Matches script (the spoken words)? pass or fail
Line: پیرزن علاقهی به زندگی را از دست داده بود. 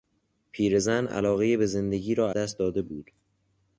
fail